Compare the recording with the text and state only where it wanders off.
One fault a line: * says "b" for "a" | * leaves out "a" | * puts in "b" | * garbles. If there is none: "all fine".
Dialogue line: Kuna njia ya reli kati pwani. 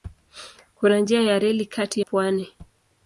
all fine